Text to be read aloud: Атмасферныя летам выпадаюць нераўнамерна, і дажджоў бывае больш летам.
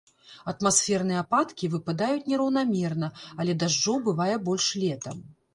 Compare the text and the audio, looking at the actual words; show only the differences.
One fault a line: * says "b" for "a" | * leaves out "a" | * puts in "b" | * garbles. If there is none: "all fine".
* says "ападкі" for "летам"
* says "але" for "і"